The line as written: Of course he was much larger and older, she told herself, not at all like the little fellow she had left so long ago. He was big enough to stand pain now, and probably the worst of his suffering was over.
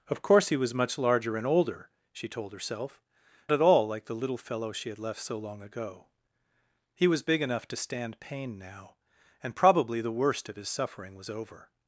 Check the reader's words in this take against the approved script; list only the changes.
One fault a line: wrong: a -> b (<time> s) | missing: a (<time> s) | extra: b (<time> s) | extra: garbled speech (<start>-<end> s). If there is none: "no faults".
missing: not (3.0 s)